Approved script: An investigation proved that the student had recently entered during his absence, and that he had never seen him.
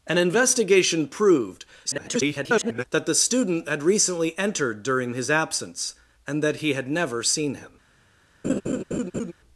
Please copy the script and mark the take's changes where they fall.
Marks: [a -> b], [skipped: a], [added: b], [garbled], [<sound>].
An investigation proved [garbled] that the student had recently entered during his absence, and that he had never seen him. [laugh]